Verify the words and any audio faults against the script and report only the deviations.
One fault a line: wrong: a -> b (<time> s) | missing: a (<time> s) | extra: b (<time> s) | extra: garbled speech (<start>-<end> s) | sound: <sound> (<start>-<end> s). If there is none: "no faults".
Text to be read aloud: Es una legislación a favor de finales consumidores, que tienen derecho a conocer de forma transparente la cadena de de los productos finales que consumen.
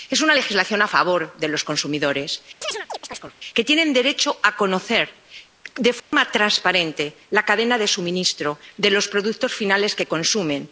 wrong: finales -> los (1.5 s)
sound: chirp (2.6-3.4 s)
sound: dropout (6.0-6.1 s)
extra: suministro (7.9 s)